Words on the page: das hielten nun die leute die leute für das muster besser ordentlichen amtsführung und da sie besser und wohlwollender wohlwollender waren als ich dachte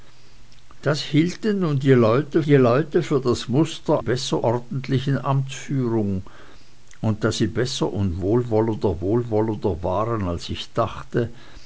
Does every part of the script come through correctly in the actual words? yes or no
yes